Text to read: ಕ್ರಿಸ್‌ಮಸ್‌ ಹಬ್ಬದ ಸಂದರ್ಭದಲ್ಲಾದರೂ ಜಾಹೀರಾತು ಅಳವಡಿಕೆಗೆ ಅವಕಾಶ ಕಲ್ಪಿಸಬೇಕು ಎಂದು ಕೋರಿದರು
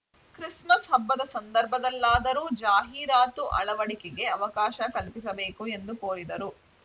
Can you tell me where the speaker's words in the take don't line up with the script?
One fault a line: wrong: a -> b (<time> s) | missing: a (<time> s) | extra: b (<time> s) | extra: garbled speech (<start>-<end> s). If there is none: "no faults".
no faults